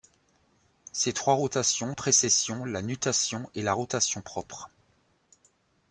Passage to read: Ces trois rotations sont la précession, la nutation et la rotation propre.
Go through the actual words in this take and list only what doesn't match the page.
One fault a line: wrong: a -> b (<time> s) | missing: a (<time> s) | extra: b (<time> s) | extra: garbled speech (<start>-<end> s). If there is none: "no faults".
missing: sont la (1.9 s)